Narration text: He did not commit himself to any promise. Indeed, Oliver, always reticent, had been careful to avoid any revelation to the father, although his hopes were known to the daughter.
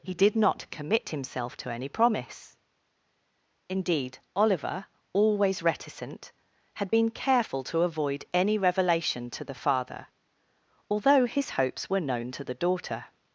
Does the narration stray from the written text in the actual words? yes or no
no